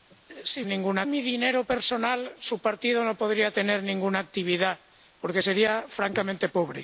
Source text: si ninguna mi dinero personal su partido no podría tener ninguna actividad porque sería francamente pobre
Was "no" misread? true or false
false